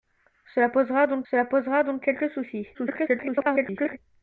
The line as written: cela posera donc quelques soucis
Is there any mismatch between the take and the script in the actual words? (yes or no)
yes